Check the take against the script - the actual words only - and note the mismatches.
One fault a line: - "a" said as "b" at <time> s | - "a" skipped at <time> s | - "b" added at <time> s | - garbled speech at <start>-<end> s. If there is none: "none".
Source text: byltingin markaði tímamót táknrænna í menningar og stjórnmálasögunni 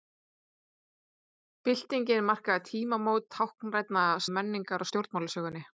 none